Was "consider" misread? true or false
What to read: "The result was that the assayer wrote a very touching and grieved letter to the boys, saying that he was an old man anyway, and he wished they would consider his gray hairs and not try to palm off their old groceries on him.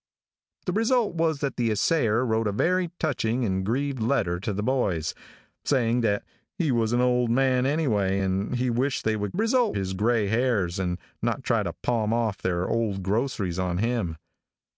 true